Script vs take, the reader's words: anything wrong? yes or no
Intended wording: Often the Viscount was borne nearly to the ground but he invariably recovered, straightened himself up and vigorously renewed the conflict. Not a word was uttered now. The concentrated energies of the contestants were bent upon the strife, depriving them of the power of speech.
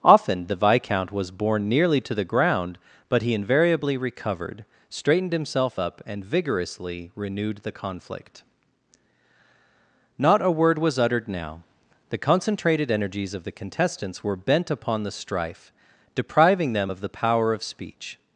no